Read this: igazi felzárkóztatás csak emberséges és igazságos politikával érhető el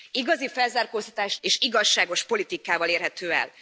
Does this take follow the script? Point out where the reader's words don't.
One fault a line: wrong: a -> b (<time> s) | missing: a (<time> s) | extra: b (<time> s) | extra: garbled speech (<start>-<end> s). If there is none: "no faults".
missing: csak emberséges (1.4 s)